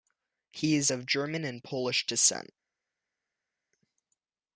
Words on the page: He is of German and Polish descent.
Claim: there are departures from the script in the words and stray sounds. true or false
false